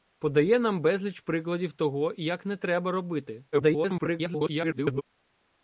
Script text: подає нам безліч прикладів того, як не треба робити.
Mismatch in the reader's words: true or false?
true